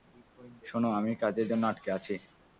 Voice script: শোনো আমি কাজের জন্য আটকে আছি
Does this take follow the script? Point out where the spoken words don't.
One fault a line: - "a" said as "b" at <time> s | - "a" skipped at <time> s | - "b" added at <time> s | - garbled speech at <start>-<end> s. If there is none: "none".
none